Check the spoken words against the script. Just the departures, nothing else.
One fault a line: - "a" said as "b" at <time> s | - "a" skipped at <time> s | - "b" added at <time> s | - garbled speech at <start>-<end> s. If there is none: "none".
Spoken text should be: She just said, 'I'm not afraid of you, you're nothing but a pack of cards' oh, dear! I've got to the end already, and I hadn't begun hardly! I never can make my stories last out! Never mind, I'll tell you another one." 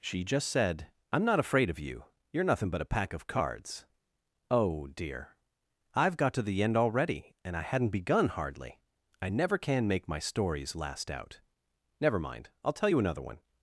none